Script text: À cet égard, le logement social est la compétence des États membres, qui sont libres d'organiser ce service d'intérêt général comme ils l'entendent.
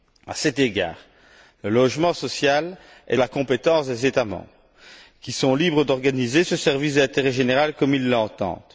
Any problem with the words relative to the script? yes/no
no